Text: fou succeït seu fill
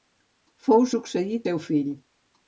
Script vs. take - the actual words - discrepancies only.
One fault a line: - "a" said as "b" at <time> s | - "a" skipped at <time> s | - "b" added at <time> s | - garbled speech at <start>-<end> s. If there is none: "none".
none